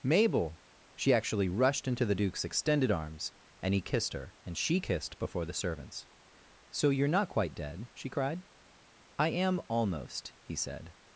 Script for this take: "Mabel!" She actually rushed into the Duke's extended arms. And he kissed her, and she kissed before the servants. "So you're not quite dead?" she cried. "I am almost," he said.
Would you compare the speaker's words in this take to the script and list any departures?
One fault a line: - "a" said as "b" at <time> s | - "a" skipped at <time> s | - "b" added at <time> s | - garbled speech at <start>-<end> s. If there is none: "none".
none